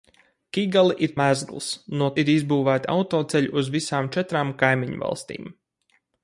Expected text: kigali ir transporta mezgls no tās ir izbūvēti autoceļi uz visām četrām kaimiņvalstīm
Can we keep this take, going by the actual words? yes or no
no